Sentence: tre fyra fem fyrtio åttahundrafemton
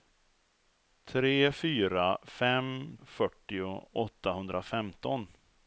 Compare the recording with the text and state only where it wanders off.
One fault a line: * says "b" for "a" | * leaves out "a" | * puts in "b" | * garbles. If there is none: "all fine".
all fine